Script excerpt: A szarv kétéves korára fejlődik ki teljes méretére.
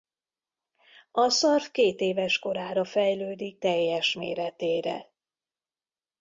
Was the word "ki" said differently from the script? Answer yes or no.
yes